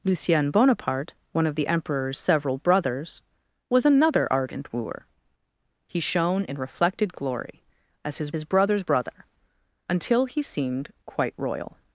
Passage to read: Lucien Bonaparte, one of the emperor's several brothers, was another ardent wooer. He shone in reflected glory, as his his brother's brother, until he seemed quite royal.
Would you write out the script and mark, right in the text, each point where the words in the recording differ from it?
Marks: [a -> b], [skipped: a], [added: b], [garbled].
Lucien Bonaparte, one of the emperor's several brothers, was another ardent wooer. He shone in reflected glory, as his his brother's brother, until he seemed quite royal.